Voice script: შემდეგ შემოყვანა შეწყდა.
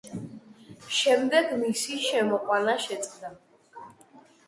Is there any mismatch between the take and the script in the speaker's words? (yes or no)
yes